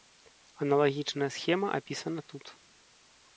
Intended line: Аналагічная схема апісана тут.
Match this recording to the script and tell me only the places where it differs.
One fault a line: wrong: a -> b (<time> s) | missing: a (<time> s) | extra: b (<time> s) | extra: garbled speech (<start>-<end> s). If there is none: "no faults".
no faults